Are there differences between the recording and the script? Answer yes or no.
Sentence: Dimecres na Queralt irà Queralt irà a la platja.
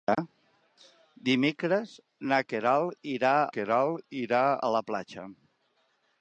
no